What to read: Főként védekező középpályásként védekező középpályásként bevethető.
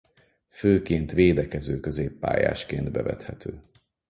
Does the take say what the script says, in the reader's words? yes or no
no